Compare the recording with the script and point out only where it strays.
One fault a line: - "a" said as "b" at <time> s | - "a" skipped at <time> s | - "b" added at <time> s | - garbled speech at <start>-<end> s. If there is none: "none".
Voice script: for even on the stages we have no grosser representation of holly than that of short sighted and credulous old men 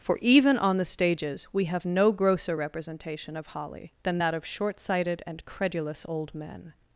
none